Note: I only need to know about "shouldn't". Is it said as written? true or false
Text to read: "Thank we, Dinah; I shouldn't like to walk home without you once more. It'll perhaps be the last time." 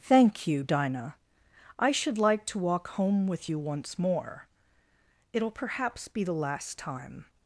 false